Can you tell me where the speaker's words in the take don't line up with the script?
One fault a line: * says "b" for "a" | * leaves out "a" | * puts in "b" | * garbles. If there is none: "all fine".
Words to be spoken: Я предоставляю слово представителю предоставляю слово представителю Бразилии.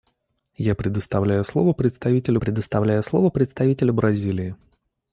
all fine